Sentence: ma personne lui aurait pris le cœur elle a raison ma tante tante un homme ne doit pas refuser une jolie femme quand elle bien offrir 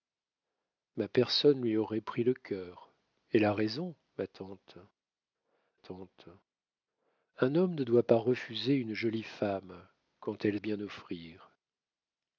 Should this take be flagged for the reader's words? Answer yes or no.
no